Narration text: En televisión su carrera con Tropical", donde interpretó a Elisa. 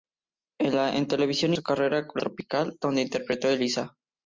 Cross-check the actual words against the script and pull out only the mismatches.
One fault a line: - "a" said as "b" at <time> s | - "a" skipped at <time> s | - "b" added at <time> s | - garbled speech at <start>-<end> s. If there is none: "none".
none